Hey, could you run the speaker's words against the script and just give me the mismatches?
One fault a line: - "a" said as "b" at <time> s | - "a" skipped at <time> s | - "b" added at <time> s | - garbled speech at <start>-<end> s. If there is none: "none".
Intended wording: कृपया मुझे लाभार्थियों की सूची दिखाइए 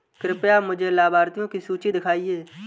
none